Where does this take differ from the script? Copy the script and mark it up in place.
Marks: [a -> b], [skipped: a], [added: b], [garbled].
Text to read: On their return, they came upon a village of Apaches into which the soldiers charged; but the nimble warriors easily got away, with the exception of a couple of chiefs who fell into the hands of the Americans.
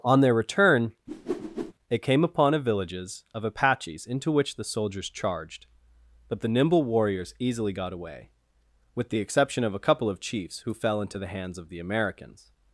On their return, they came upon a [village -> villages] of Apaches into which the soldiers charged; but the nimble warriors easily got away, with the exception of a couple of chiefs who fell into the hands of the Americans.